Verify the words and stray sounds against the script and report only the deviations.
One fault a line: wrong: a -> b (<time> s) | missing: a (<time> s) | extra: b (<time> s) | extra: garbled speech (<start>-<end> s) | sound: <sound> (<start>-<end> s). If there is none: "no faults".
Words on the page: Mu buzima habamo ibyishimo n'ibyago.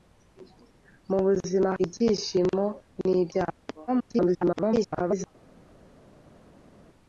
missing: habamo (1.7 s)
extra: garbled speech (3.9-5.3 s)